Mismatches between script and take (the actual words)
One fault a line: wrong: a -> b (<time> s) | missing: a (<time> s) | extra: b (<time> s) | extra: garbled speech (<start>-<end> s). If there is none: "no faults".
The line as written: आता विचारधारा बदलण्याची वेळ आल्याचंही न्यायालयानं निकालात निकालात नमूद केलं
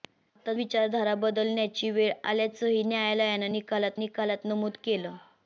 no faults